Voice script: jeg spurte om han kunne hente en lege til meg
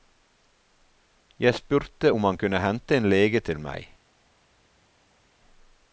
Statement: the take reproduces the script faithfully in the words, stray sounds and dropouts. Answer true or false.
true